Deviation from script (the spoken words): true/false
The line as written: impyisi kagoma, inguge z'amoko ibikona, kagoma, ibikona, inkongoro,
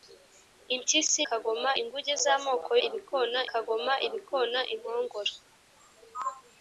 false